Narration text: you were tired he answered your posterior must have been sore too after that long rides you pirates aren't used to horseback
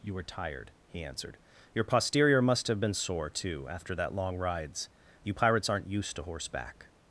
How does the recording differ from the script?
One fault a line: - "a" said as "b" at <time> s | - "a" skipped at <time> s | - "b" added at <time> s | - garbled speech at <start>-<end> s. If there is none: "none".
none